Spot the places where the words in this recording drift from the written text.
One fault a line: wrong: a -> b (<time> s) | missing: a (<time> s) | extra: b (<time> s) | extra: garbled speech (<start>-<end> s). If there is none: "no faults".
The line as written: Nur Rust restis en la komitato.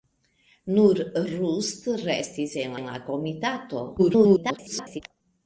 extra: en (2.8 s)
extra: garbled speech (4.0-5.0 s)